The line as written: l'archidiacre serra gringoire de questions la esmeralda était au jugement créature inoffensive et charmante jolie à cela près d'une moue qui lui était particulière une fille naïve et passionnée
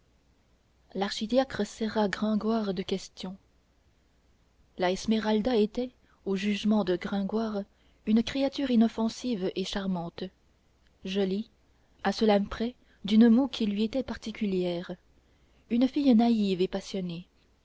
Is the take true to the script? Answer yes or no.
no